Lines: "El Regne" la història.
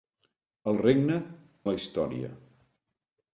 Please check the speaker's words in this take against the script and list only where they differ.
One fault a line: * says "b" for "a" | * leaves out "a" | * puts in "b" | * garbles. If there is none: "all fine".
all fine